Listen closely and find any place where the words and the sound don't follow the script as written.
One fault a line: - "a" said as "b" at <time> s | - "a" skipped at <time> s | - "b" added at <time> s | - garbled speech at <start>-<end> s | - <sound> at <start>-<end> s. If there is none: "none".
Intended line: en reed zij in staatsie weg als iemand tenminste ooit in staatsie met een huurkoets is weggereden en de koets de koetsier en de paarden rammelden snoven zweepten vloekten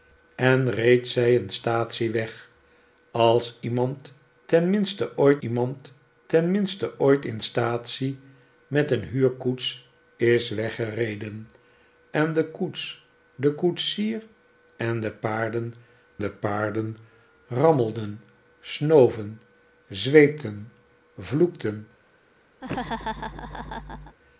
- "iemand tenminste ooit" added at 5.4 s
- "de paarden" added at 16.2 s
- laugh at 22.6-24.2 s